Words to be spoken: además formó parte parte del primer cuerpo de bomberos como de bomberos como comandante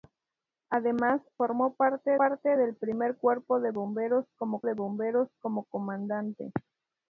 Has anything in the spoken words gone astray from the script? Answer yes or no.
no